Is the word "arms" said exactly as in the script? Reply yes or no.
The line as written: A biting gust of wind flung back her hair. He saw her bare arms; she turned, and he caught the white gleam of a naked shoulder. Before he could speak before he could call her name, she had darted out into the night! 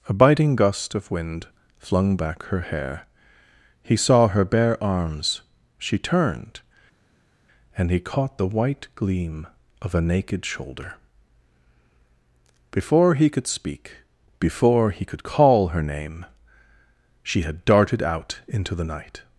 yes